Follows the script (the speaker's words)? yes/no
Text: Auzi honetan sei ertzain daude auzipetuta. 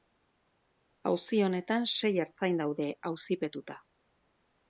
yes